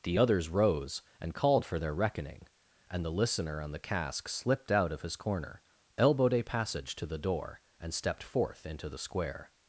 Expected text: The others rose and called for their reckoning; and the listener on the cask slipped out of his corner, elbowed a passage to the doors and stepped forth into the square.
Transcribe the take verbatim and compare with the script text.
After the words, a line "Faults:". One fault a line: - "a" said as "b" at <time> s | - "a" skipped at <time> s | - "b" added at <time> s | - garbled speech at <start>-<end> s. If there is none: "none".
The others rose and called for their reckoning; and the listener on the cask slipped out of his corner, elbowed a passage to the door and stepped forth into the square.
Faults:
- "doors" said as "door" at 7.2 s